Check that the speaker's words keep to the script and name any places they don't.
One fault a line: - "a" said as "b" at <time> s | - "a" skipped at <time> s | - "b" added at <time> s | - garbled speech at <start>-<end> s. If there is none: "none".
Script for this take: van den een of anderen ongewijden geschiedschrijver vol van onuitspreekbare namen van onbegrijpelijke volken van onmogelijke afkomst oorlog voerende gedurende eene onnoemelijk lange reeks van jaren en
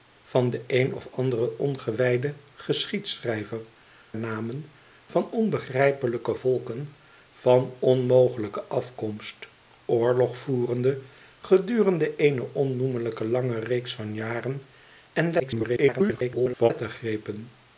- "vol van onuitspreekbare" skipped at 3.6 s
- garbled speech at 15.4-16.7 s